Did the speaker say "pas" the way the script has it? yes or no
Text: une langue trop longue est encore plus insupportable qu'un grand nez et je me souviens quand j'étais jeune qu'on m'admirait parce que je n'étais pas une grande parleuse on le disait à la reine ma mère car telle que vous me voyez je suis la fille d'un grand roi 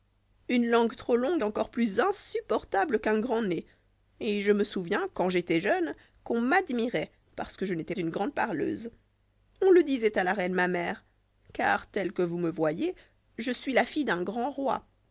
no